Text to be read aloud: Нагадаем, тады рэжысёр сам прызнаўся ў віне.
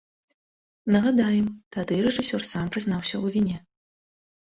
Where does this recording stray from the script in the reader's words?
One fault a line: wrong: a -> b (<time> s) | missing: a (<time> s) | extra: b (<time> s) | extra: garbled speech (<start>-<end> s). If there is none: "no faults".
no faults